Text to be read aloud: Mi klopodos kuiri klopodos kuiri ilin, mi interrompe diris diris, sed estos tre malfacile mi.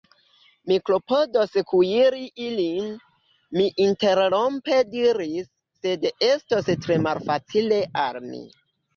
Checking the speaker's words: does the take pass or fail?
fail